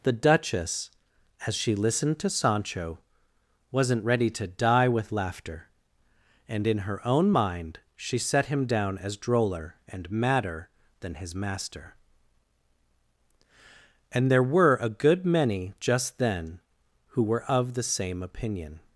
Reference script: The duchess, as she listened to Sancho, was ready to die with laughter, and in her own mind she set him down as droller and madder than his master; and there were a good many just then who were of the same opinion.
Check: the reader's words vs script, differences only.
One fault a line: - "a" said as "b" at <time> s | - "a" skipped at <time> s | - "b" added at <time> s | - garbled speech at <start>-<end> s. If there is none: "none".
- "was" said as "wasn't" at 3.7 s